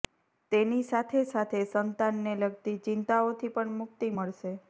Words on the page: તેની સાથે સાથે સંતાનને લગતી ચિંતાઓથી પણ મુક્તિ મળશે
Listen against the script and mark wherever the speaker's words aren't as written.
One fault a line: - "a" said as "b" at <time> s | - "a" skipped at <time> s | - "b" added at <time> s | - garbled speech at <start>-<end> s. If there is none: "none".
none